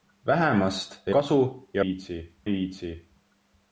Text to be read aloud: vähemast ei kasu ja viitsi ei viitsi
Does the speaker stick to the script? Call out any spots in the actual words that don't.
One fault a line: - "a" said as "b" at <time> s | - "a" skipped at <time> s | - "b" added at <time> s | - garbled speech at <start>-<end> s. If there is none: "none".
none